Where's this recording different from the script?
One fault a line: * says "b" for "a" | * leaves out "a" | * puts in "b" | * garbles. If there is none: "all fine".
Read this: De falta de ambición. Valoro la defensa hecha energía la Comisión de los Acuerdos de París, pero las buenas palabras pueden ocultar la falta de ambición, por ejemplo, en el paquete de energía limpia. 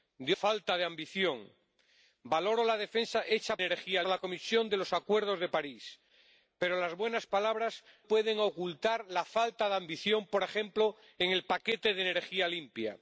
all fine